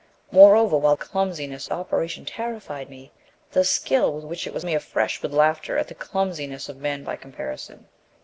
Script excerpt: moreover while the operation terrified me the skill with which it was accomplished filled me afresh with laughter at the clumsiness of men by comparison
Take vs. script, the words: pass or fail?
fail